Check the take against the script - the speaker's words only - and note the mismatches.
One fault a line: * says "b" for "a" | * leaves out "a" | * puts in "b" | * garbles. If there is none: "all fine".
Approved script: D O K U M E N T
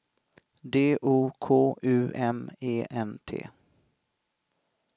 all fine